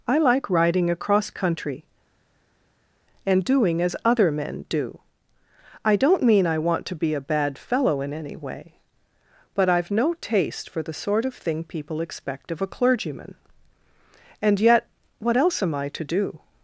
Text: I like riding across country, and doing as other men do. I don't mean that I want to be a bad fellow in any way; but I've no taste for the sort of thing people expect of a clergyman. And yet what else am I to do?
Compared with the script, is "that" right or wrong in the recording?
wrong